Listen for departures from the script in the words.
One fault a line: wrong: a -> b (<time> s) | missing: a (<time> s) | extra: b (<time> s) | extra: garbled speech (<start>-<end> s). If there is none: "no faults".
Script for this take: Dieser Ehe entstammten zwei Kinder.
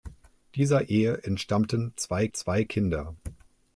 extra: zwei (2.3 s)